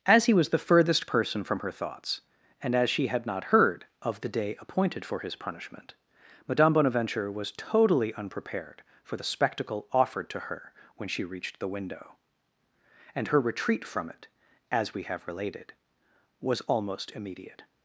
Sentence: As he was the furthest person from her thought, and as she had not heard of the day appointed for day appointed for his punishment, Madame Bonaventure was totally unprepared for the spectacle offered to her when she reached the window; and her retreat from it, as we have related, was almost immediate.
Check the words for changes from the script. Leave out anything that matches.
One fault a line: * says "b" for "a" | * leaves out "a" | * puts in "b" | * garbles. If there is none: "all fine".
* says "thoughts" for "thought"
* leaves out "day appointed for"